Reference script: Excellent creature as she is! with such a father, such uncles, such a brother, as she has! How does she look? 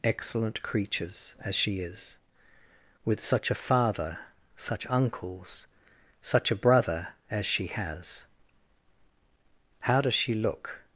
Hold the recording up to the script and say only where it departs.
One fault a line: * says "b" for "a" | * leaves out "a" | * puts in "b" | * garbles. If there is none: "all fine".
* says "creatures" for "creature"